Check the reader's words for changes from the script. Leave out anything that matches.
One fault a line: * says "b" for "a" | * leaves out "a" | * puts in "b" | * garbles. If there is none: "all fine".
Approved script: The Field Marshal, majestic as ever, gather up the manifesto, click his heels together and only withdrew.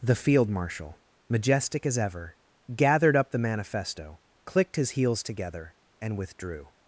* says "gathered" for "gather"
* says "clicked" for "click"
* leaves out "only"